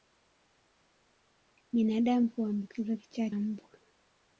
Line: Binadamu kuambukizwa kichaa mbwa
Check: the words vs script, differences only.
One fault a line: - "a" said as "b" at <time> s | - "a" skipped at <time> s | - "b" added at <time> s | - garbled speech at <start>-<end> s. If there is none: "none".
none